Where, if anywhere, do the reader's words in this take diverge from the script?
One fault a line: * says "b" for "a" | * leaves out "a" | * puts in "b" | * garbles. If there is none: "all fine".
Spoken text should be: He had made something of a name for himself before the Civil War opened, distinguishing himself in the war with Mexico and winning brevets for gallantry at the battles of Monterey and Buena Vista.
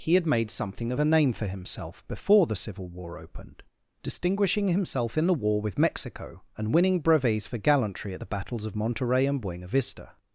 all fine